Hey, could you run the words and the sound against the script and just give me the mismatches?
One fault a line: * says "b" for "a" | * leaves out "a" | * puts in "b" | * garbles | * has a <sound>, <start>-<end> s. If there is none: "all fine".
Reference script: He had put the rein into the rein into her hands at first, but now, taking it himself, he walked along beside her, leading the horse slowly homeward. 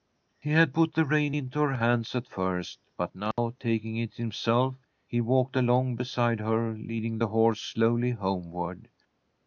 * leaves out "the rein into"
* has a dropout, 3.3-3.4 s